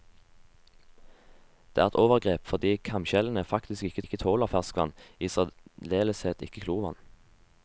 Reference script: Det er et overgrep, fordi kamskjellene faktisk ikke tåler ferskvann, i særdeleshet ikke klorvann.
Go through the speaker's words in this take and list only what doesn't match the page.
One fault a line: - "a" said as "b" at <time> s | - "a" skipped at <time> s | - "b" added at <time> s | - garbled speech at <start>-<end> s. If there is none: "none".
- "ikke" added at 4.0 s